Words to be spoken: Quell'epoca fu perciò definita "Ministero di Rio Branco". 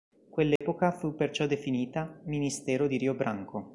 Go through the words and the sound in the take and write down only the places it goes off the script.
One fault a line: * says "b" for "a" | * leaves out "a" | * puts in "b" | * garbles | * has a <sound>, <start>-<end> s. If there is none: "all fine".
* has a dropout, 0.6-0.6 s